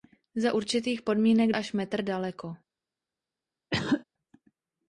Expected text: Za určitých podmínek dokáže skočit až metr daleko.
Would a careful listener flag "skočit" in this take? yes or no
yes